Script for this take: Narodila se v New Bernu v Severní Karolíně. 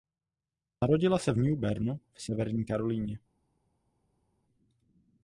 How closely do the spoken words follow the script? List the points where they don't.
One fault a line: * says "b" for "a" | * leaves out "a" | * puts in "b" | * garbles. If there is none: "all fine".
all fine